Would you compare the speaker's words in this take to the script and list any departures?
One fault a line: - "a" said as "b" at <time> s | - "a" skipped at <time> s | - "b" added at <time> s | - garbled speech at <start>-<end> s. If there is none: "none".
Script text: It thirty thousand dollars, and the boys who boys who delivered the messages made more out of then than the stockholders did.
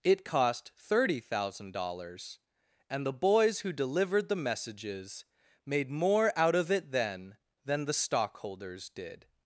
- "cost" added at 0.2 s
- "boys who" skipped at 3.7 s
- "it" added at 6.7 s